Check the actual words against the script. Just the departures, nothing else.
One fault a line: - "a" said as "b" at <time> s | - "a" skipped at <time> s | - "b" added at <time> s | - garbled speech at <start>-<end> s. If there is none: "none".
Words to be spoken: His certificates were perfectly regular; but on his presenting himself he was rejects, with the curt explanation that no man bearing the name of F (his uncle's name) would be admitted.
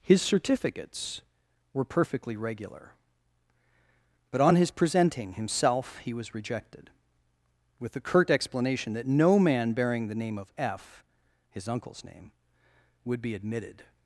- "rejects" said as "rejected" at 6.3 s